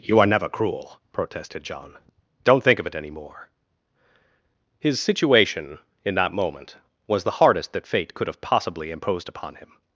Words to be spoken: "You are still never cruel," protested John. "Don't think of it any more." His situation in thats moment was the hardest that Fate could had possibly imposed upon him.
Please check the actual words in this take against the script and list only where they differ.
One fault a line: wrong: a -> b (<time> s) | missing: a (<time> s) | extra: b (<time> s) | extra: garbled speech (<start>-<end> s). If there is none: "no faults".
missing: still (0.2 s)
wrong: thats -> that (6.2 s)
wrong: had -> have (8.3 s)